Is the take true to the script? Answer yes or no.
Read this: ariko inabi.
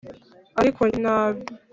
yes